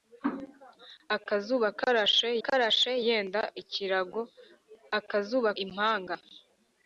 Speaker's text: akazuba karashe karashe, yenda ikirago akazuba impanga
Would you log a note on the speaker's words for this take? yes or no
no